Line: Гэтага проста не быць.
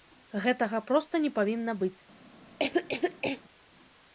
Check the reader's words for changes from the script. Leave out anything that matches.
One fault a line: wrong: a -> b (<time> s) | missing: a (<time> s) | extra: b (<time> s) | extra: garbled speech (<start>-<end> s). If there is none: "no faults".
extra: павінна (1.4 s)